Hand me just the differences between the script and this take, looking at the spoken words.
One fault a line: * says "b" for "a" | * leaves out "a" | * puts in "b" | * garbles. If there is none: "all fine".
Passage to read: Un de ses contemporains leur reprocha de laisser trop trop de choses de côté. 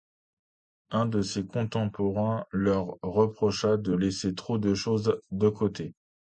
* leaves out "trop"